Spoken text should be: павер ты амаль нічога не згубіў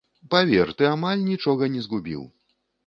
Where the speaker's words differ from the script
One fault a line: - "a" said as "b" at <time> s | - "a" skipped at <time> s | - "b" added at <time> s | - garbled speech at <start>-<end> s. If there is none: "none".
none